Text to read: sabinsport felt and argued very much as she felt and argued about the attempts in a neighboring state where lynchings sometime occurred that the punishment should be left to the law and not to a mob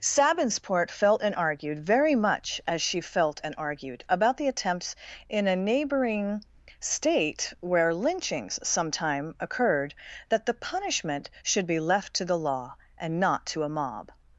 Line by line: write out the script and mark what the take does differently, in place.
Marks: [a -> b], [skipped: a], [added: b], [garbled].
sabinsport felt and argued very much as she felt and argued about the attempts in a neighboring state where lynchings sometime occurred that the punishment should be left to the law and not to a mob